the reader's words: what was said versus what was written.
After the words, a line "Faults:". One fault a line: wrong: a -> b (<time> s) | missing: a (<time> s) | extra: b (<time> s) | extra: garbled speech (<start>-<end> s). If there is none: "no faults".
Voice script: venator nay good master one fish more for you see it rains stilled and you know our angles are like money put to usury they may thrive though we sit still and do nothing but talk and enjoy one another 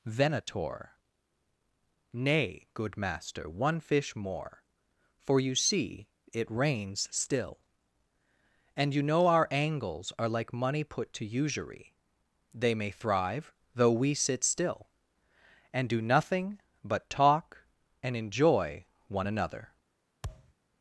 venator nay good master one fish more for you see it rains still and you know our angles are like money put to usury they may thrive though we sit still and do nothing but talk and enjoy one another
Faults:
wrong: stilled -> still (7.1 s)